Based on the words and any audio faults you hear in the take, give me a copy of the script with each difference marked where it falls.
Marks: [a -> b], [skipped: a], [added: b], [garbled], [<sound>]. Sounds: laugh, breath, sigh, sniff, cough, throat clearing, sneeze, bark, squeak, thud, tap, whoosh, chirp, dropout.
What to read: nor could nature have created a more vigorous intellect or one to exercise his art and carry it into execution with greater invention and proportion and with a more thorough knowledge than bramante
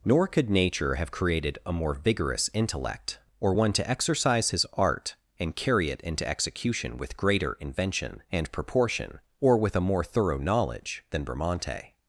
nor could nature have created a more vigorous intellect or one to exercise his art and carry it into execution with greater invention and proportion [and -> or] with a more thorough knowledge than bramante